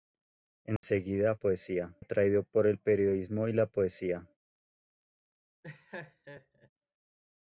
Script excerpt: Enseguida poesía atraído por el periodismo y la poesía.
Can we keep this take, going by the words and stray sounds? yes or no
no